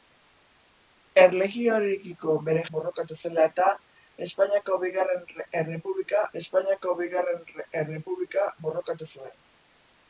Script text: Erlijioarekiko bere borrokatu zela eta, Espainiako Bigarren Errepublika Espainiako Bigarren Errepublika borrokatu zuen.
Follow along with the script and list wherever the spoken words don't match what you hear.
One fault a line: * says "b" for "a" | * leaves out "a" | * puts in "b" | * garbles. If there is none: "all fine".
all fine